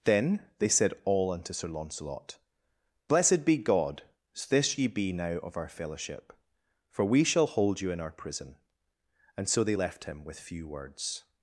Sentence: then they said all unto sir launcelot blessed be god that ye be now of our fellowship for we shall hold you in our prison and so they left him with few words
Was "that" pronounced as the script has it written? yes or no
no